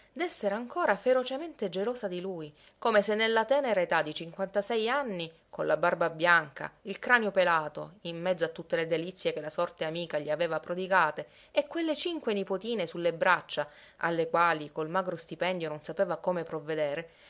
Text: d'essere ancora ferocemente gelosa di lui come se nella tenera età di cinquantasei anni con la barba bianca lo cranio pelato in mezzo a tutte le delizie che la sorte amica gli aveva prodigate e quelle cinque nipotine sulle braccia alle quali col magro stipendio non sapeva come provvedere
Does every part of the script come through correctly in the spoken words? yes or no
no